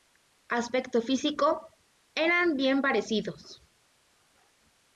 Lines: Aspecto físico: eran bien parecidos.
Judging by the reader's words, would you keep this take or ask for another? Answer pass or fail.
pass